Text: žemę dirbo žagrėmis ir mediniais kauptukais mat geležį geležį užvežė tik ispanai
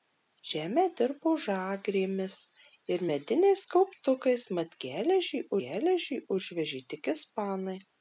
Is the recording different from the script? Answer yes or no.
no